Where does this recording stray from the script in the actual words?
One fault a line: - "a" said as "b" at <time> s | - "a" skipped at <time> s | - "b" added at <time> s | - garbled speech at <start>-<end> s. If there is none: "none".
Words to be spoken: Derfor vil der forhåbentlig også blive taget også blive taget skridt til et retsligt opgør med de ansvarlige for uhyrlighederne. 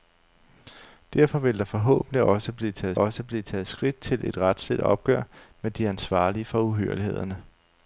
none